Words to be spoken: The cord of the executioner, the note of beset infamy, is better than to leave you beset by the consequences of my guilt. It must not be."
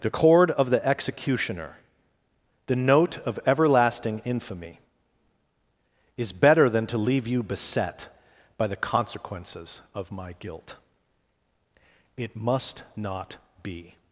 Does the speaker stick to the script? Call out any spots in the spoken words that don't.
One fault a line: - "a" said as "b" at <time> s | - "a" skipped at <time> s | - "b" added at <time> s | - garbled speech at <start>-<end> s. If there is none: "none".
- "beset" said as "everlasting" at 3.5 s